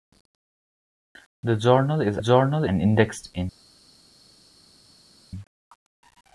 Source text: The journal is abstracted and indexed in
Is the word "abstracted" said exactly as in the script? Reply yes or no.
no